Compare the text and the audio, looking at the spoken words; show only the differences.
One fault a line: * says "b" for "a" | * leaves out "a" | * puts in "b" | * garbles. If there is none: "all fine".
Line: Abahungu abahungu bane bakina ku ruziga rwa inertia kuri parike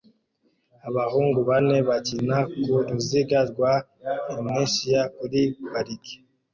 * leaves out "abahungu"